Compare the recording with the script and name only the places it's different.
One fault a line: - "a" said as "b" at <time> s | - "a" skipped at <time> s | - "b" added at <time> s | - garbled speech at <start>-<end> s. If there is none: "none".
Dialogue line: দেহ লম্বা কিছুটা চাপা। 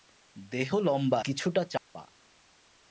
none